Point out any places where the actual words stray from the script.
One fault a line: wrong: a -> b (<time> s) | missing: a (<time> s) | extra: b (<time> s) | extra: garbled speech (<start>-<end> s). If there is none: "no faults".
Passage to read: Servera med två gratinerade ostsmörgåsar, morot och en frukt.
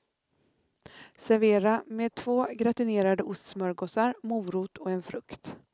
no faults